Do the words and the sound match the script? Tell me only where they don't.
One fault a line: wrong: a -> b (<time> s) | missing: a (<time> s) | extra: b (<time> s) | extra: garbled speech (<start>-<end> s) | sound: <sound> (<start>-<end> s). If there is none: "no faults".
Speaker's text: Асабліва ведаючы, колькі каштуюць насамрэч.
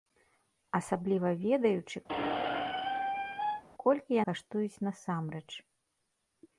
sound: squeak (2.1-3.6 s)